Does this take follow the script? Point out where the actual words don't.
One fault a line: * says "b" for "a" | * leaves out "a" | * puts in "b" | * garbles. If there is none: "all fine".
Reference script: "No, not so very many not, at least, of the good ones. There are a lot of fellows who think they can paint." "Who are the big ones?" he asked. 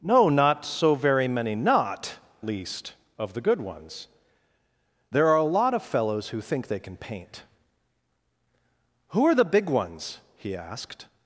* leaves out "at"